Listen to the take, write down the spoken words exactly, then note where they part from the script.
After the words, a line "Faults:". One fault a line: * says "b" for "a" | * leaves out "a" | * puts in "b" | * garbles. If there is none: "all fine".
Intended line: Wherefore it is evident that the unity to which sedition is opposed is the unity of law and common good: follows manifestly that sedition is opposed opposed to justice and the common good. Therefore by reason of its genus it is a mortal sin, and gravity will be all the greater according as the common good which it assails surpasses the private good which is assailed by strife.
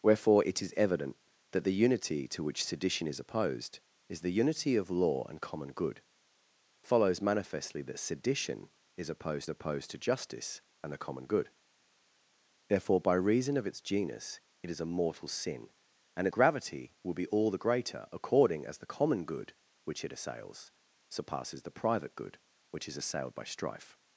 Wherefore it is evident that the unity to which sedition is opposed is the unity of law and common good: follows manifestly that sedition is opposed opposed to justice and the common good. Therefore by reason of its genus it is a mortal sin, and gravity will be all the greater according as the common good which it assails surpasses the private good which is assailed by strife.
Faults:
all fine